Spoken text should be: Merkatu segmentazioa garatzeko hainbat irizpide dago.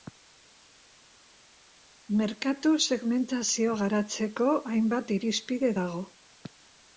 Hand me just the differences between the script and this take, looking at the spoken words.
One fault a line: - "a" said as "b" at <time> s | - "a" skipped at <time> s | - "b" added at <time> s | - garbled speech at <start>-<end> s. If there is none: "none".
none